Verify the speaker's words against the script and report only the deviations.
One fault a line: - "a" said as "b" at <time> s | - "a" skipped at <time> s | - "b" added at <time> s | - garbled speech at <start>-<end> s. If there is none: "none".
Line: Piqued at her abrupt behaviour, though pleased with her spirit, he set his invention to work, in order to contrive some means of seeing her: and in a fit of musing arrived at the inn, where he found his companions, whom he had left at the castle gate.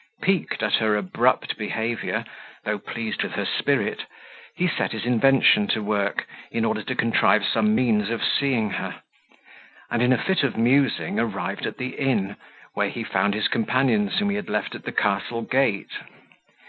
none